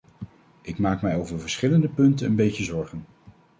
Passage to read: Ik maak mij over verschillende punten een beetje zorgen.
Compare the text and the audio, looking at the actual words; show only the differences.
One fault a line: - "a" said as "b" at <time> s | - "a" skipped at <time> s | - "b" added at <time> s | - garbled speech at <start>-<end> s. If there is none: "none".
none